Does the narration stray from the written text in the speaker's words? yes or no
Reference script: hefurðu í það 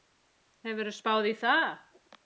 yes